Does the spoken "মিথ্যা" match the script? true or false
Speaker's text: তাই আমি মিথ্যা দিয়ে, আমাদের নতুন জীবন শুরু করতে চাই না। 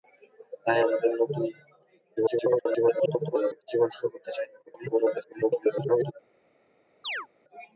false